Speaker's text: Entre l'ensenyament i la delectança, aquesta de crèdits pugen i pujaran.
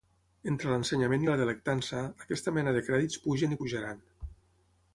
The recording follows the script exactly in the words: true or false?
false